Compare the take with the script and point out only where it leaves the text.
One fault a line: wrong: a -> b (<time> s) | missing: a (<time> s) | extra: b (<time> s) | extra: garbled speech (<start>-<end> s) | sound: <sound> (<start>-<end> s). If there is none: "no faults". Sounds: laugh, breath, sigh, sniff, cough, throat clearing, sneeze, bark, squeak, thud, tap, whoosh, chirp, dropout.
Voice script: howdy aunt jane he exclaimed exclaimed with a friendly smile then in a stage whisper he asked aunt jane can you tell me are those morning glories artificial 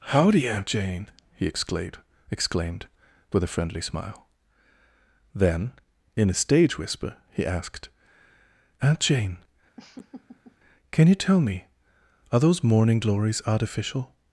sound: laugh (9.8-10.6 s)